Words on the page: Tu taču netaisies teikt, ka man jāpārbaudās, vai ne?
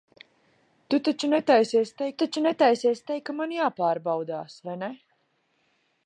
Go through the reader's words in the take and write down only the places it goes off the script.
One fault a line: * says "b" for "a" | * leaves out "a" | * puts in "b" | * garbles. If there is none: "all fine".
* puts in "taču netaisies teikt"